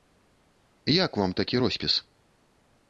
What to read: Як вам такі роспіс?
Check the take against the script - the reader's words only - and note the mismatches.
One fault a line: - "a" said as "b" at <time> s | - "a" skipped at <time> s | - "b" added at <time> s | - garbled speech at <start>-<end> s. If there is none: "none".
none